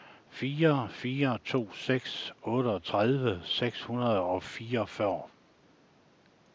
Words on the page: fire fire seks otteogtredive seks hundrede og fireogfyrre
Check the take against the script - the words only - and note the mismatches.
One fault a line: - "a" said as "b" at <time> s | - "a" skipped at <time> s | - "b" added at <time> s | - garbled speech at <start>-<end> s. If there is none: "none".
- "to" added at 1.4 s